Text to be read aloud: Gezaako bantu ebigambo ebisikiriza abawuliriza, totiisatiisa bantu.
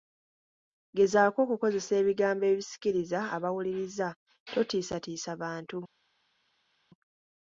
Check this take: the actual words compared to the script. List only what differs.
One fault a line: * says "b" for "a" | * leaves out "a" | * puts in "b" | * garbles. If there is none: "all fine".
* says "okukozesa" for "bantu"